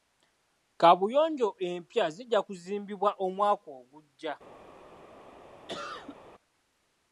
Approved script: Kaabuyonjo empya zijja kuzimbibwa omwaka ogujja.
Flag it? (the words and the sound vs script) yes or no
yes